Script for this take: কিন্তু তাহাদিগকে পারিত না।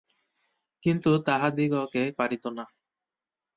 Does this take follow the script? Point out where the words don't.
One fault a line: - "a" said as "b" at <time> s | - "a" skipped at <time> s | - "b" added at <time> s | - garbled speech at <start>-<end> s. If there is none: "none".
none